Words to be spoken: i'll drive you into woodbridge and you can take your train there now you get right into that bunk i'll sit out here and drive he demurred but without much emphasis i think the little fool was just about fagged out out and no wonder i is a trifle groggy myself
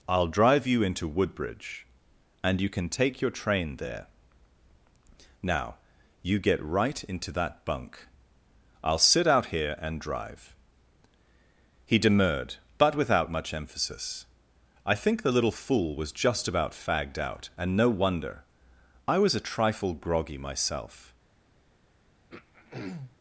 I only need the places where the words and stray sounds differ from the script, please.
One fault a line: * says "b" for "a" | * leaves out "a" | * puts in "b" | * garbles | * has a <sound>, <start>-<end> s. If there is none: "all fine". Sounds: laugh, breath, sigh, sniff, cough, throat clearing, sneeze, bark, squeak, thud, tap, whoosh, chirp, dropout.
* leaves out "out"
* says "was" for "is"
* has a throat clearing, 22.3-23.2 s